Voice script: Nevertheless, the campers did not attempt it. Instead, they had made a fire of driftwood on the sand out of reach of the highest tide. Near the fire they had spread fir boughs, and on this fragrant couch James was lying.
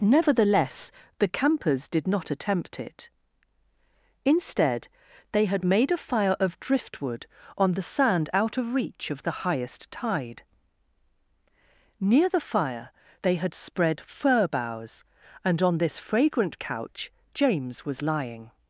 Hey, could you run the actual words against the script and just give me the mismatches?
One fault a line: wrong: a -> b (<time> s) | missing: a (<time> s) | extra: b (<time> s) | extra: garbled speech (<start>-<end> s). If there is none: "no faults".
no faults